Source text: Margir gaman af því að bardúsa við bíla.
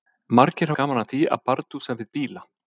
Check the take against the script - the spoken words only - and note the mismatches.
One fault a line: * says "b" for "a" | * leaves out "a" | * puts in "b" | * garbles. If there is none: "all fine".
all fine